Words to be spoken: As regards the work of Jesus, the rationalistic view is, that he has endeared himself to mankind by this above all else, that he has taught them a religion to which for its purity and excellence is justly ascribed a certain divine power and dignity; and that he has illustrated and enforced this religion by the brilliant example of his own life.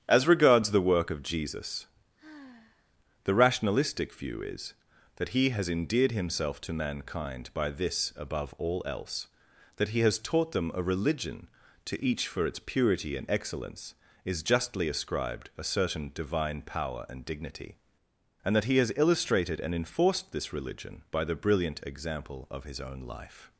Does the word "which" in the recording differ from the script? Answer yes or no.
yes